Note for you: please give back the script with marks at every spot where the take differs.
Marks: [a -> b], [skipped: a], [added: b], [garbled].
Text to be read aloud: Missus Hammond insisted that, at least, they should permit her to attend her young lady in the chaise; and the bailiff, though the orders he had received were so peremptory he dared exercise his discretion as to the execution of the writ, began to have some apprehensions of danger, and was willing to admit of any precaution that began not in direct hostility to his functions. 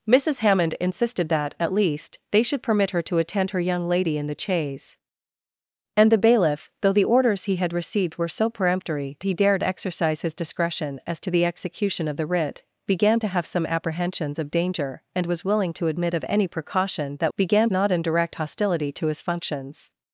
Missus Hammond insisted that, at least, they should permit her to attend her young lady in the chaise; and the bailiff, though the orders he had received were so peremptory he dared exercise his discretion as to the execution of the writ, began to have some apprehensions of danger, and was willing to admit of any precaution that began not in direct hostility to his functions.